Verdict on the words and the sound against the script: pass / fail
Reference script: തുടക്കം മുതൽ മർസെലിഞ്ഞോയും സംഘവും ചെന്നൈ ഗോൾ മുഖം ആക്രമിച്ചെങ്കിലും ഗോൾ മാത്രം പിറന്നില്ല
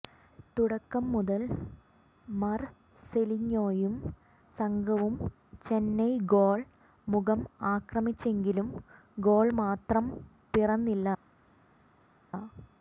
pass